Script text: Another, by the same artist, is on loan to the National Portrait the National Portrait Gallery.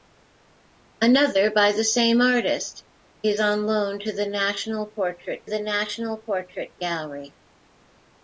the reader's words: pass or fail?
pass